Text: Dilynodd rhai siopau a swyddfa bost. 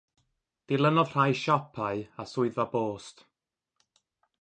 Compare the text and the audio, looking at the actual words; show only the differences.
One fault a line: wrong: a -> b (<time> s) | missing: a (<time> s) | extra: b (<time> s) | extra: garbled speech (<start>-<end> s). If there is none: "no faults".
no faults